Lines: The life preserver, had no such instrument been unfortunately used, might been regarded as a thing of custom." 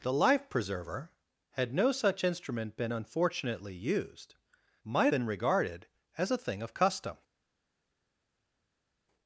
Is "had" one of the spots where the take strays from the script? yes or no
no